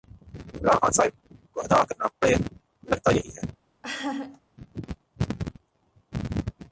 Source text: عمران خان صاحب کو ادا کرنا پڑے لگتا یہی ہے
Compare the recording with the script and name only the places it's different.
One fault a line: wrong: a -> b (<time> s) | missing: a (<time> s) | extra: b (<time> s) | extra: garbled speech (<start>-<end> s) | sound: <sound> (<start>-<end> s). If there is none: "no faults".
sound: laugh (3.8-4.4 s)